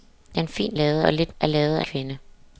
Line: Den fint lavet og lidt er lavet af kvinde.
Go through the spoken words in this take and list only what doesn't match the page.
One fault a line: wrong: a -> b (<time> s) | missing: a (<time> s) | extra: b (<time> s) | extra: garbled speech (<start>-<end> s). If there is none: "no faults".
no faults